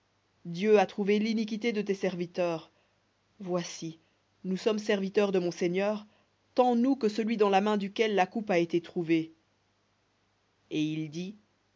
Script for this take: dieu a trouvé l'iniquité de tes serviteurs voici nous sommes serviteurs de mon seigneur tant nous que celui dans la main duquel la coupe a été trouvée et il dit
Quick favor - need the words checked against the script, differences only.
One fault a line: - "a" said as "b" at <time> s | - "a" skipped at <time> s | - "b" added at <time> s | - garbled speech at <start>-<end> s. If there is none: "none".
none